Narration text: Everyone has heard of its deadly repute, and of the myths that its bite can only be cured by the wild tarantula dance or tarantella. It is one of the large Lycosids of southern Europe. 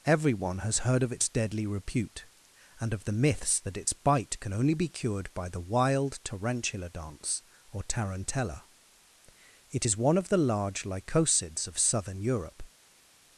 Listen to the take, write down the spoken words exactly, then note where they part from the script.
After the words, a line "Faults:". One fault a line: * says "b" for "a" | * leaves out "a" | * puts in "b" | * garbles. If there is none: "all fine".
Everyone has heard of its deadly repute, and of the myths that its bite can only be cured by the wild tarantula dance or tarantella. It is one of the large Lycosids of southern Europe.
Faults:
all fine